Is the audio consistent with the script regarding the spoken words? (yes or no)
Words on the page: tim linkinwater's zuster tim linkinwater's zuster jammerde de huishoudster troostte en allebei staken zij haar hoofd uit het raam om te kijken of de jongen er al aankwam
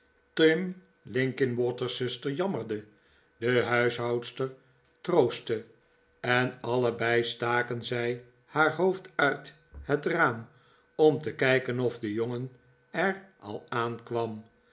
no